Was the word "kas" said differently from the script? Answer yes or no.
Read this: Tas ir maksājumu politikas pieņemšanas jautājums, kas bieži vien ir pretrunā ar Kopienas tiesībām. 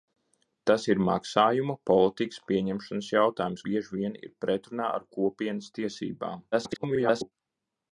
yes